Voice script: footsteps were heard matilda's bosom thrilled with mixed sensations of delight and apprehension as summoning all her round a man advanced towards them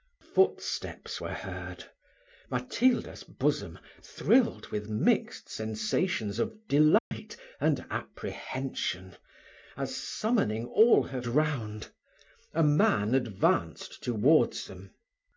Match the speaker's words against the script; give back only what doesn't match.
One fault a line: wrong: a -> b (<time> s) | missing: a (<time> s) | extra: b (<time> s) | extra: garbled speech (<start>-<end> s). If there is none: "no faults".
no faults